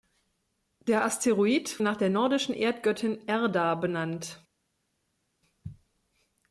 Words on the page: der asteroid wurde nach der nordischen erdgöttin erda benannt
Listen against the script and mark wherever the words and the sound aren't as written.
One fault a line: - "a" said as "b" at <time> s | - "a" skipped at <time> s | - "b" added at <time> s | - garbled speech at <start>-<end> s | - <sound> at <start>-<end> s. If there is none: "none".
- "wurde" skipped at 1.8 s